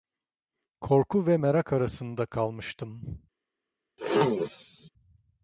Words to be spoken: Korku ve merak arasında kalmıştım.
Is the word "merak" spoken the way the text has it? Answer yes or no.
yes